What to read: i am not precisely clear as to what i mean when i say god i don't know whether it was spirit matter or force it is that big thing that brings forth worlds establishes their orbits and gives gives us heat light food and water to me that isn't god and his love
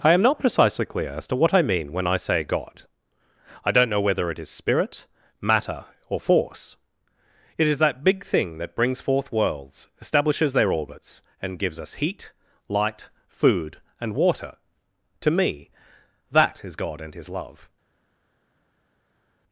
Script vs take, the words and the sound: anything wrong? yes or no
yes